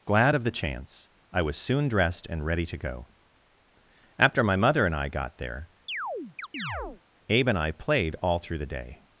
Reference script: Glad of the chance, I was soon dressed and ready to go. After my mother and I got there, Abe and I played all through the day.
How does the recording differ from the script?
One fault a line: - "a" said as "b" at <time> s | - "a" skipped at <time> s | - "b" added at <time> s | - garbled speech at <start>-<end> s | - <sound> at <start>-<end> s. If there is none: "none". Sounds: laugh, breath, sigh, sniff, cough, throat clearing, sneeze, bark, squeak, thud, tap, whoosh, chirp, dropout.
- chirp at 5.9-7.0 s